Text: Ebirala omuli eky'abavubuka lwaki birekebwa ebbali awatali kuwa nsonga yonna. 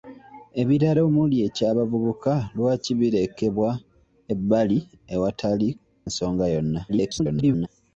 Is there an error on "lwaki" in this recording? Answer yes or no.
no